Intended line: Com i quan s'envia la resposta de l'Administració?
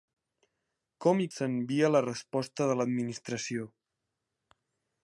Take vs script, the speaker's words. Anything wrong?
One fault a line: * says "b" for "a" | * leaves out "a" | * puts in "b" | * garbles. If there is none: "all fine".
* leaves out "quan"